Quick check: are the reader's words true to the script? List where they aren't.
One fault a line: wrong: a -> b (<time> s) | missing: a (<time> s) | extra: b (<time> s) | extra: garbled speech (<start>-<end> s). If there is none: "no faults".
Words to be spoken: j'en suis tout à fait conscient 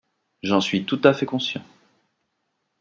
no faults